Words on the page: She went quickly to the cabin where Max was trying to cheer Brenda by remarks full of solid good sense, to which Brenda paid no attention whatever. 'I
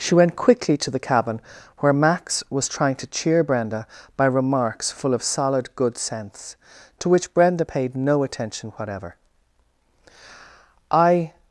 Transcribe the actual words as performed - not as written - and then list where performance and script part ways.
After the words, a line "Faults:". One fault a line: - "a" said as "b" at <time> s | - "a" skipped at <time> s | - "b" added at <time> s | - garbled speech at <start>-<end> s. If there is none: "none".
She went quickly to the cabin where Max was trying to cheer Brenda by remarks full of solid good sense, to which Brenda paid no attention whatever. 'I
Faults:
none